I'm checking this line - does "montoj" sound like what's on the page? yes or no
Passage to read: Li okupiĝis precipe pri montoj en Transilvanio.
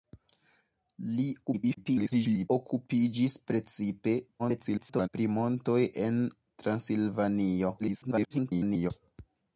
yes